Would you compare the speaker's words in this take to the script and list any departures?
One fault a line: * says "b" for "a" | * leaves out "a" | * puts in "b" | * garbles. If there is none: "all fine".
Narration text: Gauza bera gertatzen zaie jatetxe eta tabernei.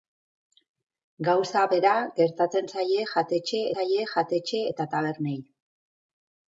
* puts in "zaie jatetxe"